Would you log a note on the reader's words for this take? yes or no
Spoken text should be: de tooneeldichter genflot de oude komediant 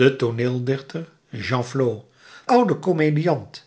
yes